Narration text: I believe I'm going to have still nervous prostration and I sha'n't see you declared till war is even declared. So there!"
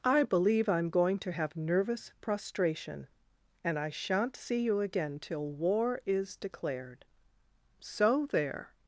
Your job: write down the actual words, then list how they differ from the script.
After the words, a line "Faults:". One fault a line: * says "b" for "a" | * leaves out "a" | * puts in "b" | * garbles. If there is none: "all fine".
I believe I'm going to have nervous prostration and I sha'n't see you again till war is declared. So there!"
Faults:
* leaves out "still"
* says "again" for "declared"
* leaves out "even"